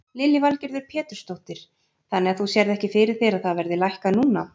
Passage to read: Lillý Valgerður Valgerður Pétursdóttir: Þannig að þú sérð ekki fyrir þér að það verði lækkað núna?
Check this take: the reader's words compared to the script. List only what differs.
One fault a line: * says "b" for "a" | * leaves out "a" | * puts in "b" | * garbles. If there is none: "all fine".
* leaves out "Valgerður"